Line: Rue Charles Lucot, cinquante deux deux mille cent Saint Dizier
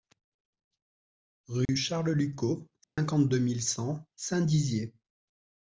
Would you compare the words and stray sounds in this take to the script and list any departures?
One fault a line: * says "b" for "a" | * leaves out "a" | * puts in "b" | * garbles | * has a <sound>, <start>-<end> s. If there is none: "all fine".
* has a dropout, 1.7-1.7 s
* has a dropout, 2.8-3.0 s
* leaves out "deux"